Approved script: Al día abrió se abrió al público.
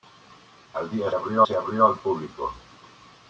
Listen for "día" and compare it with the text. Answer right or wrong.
right